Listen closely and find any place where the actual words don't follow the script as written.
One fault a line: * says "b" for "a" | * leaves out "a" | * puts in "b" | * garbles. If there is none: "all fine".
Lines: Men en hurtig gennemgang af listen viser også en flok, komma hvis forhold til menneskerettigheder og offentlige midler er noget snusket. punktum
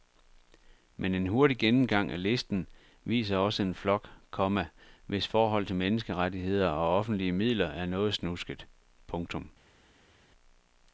all fine